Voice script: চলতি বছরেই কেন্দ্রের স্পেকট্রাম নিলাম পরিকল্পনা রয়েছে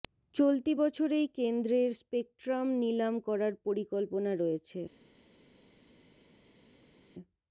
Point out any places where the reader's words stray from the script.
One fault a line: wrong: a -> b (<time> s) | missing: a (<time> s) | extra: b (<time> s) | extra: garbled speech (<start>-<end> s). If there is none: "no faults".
extra: করার (3.3 s)